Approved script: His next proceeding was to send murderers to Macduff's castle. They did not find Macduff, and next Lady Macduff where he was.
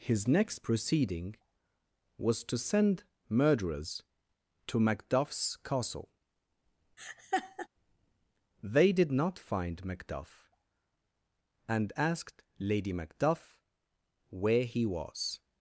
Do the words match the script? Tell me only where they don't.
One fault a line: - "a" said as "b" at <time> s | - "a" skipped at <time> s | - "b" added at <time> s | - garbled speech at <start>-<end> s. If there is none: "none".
- "next" said as "asked" at 12.0 s